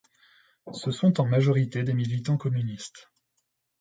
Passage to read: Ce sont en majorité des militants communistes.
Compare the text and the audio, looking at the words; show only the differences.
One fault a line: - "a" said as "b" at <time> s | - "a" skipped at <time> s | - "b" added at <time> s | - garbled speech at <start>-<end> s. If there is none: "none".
none